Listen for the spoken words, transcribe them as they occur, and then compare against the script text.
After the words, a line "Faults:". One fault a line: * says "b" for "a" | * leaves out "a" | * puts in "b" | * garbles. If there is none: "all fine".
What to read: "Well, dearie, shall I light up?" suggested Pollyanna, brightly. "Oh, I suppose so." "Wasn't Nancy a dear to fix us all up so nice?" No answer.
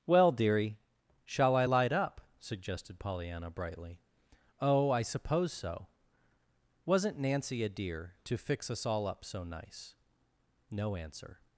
"Well, dearie, shall I light up?" suggested Pollyanna, brightly. "Oh, I suppose so." "Wasn't Nancy a dear to fix us all up so nice?" No answer.
Faults:
all fine